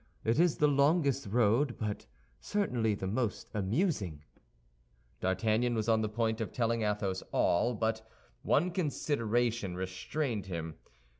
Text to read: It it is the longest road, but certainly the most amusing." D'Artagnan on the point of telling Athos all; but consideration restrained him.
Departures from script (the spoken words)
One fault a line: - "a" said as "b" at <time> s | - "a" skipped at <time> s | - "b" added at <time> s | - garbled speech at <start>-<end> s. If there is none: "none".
- "it" skipped at 0.4 s
- "was" added at 5.7 s
- "one" added at 8.4 s